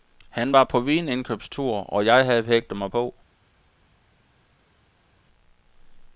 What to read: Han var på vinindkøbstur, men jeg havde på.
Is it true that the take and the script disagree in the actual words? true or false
true